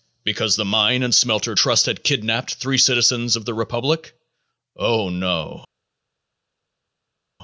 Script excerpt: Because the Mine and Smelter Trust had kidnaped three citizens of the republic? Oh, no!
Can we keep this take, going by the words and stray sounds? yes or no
yes